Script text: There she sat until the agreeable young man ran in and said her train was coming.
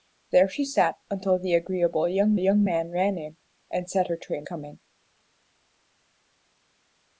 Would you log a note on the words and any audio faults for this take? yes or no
yes